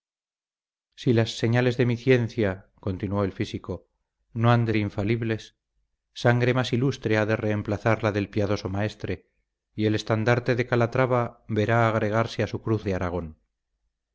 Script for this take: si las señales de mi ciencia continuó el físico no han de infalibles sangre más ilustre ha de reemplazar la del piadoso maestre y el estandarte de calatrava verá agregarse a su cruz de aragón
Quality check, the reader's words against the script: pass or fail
pass